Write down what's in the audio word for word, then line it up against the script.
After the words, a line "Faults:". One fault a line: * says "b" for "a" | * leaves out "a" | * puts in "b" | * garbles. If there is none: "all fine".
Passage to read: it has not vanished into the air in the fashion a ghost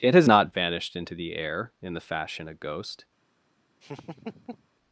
it has not vanished into the air in the fashion a ghost
Faults:
all fine